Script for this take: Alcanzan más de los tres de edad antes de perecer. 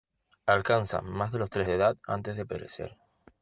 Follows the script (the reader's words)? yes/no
yes